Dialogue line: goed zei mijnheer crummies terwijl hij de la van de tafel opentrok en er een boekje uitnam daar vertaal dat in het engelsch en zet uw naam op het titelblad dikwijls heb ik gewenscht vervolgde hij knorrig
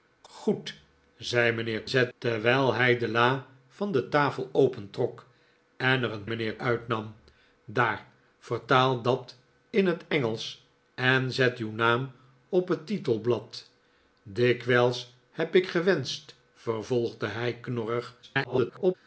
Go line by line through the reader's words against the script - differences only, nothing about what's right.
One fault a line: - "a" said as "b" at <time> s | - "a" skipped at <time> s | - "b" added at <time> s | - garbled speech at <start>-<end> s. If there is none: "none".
- "crummies" said as "zet" at 1.9 s
- "boekje" said as "mijnheer" at 6.2 s
- garbled speech at 18.2-19.0 s